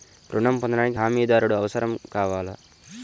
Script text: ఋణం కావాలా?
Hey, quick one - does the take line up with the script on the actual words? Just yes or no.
no